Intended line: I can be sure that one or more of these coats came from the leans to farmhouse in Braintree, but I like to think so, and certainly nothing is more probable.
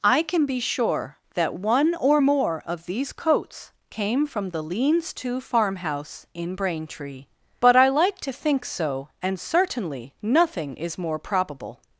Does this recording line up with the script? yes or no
yes